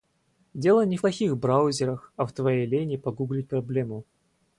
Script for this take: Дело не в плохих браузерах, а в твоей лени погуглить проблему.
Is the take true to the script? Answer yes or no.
yes